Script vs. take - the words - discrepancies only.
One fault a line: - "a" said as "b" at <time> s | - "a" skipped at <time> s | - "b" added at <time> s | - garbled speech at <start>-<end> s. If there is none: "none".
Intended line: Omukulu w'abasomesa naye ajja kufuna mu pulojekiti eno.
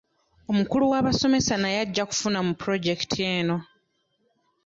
none